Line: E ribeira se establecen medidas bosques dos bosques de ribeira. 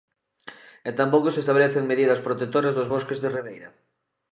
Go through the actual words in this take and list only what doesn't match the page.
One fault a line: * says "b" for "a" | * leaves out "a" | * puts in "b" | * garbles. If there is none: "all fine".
* says "tampouco" for "ribeira"
* says "protectoras" for "bosques"